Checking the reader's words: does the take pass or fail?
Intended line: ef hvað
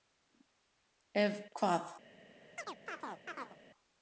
pass